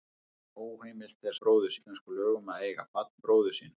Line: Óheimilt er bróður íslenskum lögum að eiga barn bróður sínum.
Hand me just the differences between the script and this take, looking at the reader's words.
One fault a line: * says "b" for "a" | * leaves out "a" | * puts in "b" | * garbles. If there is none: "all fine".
all fine